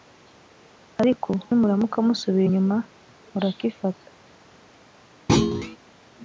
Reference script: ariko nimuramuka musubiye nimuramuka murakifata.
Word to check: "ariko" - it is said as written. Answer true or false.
true